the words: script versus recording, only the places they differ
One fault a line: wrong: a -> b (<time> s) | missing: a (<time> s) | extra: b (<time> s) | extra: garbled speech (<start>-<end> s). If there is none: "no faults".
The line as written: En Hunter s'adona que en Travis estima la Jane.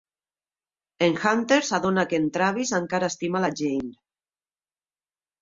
extra: encara (2.8 s)